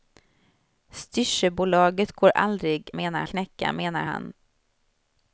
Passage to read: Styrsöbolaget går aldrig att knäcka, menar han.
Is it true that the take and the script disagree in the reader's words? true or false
true